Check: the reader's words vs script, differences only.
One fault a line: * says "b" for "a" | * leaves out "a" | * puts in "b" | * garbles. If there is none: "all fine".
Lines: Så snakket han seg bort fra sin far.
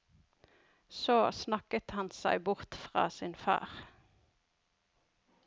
all fine